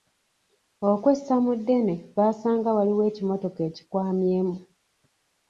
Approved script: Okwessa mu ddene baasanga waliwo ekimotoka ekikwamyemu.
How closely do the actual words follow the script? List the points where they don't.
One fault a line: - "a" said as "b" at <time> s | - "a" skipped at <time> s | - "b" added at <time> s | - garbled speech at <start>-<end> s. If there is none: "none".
none